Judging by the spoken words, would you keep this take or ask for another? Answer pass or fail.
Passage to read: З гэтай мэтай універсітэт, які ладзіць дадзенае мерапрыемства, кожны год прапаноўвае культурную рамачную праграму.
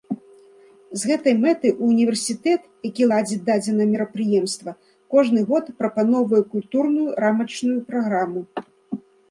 pass